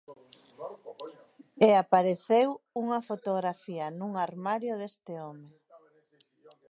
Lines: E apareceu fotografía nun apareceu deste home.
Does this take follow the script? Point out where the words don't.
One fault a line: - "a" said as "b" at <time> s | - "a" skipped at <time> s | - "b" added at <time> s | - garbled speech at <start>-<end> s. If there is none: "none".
- "unha" added at 2.8 s
- "apareceu" said as "armario" at 4.3 s